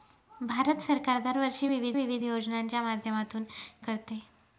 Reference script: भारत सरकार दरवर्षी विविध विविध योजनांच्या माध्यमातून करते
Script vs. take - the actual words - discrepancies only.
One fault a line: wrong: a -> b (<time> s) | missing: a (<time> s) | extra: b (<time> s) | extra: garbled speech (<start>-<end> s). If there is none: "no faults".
no faults